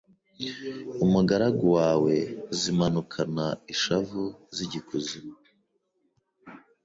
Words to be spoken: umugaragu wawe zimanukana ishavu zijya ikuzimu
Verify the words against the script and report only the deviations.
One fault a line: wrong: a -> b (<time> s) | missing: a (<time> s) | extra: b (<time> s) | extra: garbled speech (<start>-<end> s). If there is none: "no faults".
no faults